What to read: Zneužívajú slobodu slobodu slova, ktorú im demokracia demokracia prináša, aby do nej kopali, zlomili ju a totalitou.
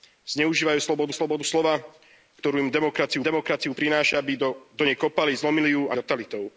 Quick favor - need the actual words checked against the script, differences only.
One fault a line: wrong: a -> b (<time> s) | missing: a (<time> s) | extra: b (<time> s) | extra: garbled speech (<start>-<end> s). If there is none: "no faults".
no faults